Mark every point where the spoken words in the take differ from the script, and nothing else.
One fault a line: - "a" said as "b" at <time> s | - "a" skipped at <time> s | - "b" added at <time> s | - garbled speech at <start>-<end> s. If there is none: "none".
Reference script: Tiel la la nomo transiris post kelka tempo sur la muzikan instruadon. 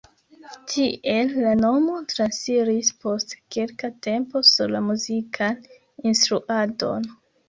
- "la" skipped at 1.5 s